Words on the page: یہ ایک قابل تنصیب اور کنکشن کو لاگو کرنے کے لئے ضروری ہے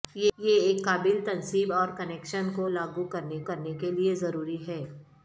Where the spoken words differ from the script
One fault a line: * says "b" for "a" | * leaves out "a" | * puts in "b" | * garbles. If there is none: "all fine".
* puts in "کرنے"